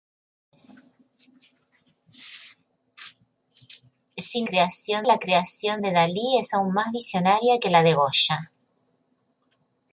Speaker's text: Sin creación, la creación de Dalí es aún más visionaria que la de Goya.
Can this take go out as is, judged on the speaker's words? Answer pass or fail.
pass